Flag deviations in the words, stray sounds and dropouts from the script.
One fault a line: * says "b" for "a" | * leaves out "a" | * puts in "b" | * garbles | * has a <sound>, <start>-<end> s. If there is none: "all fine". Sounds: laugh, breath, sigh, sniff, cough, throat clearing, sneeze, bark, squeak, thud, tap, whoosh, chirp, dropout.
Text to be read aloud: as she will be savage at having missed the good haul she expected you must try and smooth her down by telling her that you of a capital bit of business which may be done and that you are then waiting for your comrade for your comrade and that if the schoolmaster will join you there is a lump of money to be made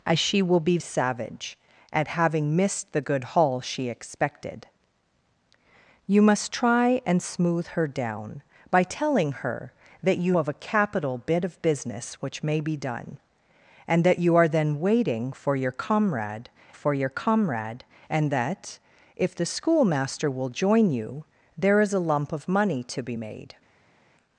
all fine